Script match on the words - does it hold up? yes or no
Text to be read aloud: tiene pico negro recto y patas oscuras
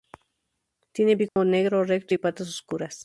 yes